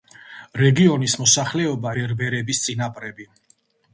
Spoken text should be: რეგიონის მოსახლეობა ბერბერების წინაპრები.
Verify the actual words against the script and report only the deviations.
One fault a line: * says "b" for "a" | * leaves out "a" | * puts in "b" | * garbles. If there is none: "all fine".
all fine